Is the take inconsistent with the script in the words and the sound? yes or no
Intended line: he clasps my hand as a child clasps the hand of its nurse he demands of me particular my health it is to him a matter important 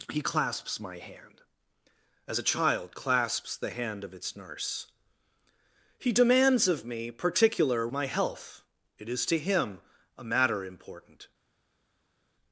no